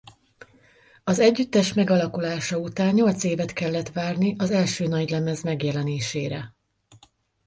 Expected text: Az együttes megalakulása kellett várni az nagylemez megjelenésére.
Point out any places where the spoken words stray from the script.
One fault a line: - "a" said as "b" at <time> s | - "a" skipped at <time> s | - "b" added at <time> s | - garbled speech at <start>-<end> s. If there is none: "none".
- "után nyolc évet" added at 2.6 s
- "első" added at 4.5 s